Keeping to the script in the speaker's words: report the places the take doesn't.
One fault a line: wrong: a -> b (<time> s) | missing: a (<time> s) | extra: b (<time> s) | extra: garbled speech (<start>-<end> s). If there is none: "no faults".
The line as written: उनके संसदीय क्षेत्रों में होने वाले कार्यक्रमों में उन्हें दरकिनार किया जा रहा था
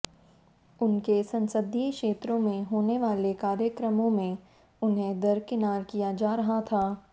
no faults